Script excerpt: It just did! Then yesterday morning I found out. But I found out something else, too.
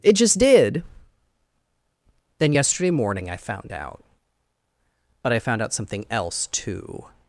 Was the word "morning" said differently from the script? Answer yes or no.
no